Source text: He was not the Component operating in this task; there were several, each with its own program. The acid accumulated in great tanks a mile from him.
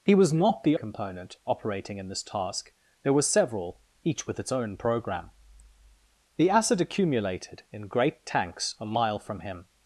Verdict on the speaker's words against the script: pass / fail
pass